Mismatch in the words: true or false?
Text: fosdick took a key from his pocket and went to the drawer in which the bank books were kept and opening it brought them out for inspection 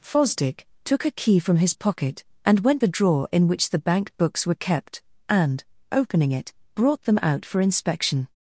true